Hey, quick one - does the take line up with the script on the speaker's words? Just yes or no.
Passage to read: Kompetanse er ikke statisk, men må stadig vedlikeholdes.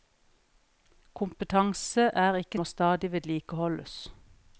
no